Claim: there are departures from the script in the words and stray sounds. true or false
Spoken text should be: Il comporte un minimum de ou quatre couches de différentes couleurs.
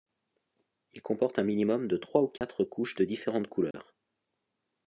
true